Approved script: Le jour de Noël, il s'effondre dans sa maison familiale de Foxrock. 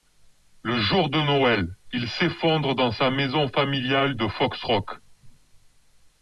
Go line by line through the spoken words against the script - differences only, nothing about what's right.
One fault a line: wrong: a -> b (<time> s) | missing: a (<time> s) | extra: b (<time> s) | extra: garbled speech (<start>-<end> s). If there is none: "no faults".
no faults